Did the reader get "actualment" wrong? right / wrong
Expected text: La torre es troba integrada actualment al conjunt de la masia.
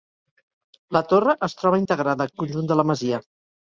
wrong